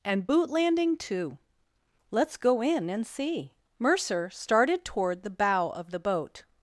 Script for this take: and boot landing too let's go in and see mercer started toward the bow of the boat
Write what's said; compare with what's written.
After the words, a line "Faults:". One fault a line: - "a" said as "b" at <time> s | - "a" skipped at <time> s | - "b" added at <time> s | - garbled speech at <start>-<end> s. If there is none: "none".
and boot landing too let's go in and see mercer started toward the bow of the boat
Faults:
none